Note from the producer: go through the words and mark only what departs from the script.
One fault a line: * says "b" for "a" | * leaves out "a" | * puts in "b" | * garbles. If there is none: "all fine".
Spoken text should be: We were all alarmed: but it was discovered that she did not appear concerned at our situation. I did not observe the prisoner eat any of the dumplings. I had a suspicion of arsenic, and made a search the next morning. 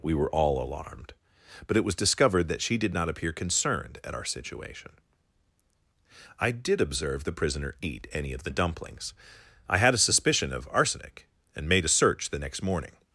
* leaves out "not"